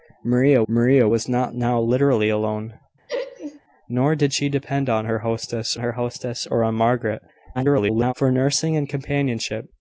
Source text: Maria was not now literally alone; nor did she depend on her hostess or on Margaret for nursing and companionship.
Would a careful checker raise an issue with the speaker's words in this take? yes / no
yes